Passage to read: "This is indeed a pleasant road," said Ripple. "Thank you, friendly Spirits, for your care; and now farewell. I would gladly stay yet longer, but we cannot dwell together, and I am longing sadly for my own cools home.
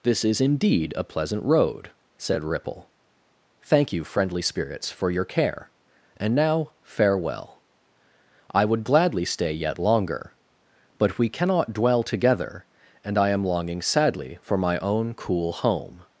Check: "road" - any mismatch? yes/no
no